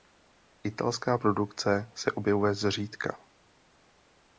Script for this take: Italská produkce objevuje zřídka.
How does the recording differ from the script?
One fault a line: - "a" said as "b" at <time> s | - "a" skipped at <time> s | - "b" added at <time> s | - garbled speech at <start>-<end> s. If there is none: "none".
- "se" added at 1.9 s